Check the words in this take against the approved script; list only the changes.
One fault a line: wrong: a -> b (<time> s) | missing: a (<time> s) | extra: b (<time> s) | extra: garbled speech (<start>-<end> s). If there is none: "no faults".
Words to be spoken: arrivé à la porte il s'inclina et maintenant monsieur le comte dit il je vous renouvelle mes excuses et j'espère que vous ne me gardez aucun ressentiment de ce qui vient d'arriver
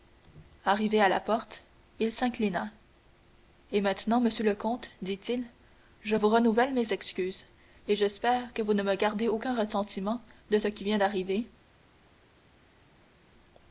no faults